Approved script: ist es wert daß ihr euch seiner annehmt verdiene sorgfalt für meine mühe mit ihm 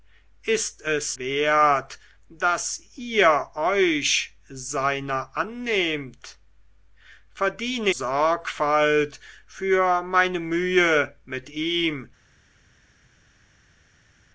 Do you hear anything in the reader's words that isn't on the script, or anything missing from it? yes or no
no